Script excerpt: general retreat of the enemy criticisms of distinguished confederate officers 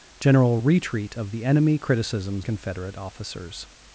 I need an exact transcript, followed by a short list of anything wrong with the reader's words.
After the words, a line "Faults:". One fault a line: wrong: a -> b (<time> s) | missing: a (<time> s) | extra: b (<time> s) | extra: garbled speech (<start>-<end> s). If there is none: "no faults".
general retreat of the enemy criticisms confederate officers
Faults:
missing: of distinguished (2.5 s)